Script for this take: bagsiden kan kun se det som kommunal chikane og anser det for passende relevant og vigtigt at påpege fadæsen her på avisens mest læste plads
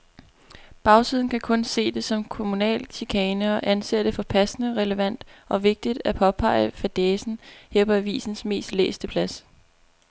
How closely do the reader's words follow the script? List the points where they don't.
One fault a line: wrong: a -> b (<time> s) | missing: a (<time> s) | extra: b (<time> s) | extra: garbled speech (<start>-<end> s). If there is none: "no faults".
no faults